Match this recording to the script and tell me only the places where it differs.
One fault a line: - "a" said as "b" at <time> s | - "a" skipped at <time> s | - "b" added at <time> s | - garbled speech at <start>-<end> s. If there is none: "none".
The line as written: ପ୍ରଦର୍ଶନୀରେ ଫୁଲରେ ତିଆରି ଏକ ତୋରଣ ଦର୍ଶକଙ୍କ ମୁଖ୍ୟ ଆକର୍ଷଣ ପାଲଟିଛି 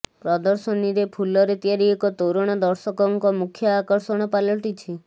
none